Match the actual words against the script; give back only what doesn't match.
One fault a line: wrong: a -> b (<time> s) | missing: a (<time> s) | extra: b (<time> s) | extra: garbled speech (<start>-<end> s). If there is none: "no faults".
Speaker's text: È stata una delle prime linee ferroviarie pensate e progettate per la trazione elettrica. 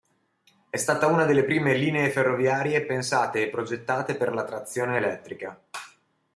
no faults